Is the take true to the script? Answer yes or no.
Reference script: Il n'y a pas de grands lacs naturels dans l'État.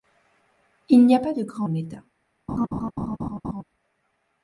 no